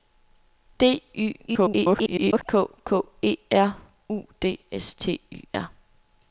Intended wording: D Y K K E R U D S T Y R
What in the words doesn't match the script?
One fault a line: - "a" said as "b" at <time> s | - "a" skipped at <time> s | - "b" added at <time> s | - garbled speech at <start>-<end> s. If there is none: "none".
- garbled speech at 1.5-2.4 s